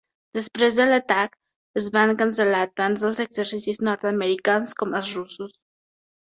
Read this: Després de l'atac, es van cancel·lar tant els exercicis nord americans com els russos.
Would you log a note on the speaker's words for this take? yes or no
no